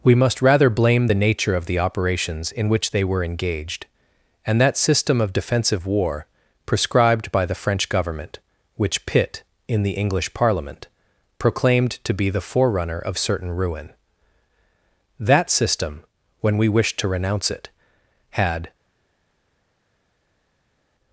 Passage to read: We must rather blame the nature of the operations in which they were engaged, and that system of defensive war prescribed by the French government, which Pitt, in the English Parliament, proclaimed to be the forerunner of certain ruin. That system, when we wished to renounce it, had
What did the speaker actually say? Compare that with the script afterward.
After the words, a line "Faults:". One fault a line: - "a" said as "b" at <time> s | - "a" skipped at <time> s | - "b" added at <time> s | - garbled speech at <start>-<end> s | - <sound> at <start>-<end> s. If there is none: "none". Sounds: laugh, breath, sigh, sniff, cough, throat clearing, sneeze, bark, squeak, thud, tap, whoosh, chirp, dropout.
We must rather blame the nature of the operations in which they were engaged, and that system of defensive war prescribed by the French government, which Pitt, in the English Parliament, proclaimed to be the forerunner of certain ruin. That system, when we wished to renounce it, had
Faults:
none